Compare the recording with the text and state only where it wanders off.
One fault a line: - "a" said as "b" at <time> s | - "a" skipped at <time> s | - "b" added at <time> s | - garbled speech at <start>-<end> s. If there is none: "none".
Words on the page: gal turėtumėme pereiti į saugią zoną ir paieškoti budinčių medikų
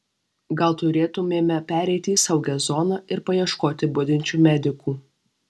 none